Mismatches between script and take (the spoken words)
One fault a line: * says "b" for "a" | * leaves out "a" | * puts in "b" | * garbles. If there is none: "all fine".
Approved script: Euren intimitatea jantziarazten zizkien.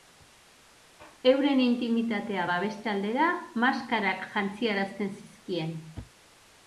* puts in "babeste aldera maskarak"